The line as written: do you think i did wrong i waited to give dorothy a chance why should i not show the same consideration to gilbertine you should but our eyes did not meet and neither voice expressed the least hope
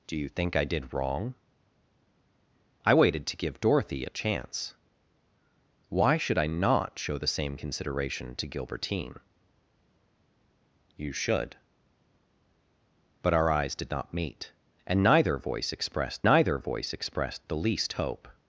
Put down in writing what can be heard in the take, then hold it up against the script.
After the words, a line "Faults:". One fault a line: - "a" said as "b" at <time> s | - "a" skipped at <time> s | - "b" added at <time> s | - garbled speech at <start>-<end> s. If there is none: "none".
do you think i did wrong i waited to give dorothy a chance why should i not show the same consideration to gilbertine you should but our eyes did not meet and neither voice expressed neither voice expressed the least hope
Faults:
- "neither voice expressed" added at 16.2 s